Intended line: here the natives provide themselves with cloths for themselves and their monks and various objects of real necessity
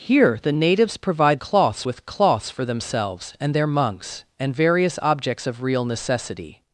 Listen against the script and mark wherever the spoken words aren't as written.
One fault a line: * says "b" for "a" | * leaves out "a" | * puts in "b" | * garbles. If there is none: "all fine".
* says "cloths" for "themselves"